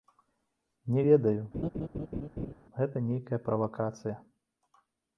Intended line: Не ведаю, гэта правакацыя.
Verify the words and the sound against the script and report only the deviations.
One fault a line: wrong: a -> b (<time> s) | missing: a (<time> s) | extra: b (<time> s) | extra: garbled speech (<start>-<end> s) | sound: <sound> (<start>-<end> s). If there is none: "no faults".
sound: laugh (1.5-2.5 s)
extra: нейкая (3.1 s)